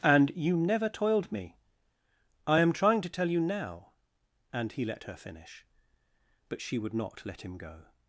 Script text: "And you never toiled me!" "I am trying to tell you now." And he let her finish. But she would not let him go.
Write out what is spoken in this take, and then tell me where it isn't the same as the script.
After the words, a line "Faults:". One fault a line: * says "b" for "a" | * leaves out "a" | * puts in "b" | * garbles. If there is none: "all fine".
"And you never toiled me!" "I am trying to tell you now." And he let her finish. But she would not let him go.
Faults:
all fine